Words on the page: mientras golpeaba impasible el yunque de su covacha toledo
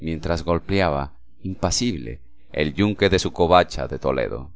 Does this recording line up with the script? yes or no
no